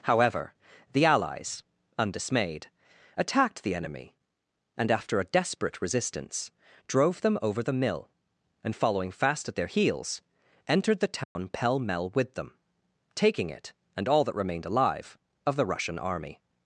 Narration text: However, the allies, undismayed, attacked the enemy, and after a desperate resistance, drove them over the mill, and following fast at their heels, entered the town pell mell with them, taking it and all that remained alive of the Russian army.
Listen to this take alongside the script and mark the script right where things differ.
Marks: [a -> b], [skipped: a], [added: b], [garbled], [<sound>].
However, the allies, undismayed, attacked the enemy, and after a desperate resistance, drove them over the mill, and following fast at their heels, entered the town [dropout] pell mell with them, taking it and all that remained alive of the Russian army.